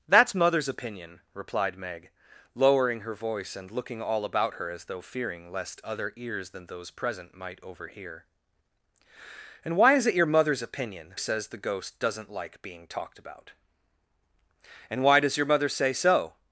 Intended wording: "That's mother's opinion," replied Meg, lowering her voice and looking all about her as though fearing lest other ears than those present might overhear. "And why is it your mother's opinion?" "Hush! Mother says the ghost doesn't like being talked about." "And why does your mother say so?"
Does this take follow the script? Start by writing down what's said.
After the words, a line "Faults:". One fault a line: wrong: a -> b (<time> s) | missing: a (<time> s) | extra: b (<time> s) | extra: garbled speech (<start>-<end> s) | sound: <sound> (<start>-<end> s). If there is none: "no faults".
"That's mother's opinion," replied Meg, lowering her voice and looking all about her as though fearing lest other ears than those present might overhear. "And why is it your mother's opinion?" "Says the ghost doesn't like being talked about." "And why does your mother say so?"
Faults:
missing: Hush Mother (11.2 s)